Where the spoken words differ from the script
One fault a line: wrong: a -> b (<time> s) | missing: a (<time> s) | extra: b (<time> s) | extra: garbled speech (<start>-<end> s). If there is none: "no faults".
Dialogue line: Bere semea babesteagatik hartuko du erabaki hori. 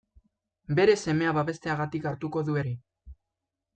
missing: erabaki (2.6 s)